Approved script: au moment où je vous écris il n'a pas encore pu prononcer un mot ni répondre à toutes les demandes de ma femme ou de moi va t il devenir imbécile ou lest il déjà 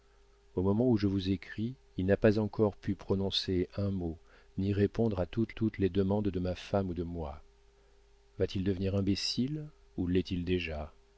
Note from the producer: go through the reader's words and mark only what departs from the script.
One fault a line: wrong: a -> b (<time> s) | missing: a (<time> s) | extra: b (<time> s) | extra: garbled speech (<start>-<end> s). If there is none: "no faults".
extra: toutes (5.5 s)